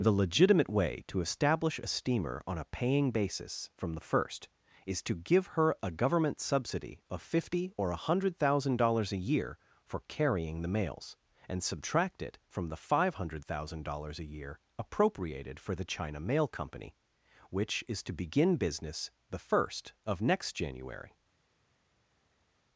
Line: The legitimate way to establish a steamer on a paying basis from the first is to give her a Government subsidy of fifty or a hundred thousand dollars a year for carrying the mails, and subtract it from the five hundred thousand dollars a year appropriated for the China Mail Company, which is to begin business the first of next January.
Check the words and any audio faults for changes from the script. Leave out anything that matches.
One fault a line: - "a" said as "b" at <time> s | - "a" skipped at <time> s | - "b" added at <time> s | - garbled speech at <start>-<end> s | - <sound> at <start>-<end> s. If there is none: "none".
none